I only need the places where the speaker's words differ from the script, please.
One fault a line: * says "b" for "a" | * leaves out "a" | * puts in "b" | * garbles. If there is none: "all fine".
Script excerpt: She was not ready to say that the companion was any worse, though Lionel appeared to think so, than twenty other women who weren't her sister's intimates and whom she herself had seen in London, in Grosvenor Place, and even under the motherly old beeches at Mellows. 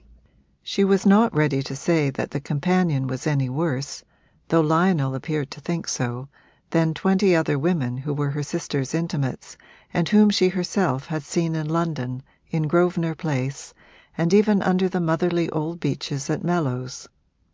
* says "were" for "weren't"